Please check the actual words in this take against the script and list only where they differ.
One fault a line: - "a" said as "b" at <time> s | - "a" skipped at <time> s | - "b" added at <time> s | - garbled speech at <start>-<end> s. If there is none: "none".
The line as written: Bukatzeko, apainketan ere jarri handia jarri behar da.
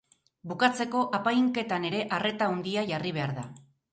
- "jarri" said as "arreta" at 2.2 s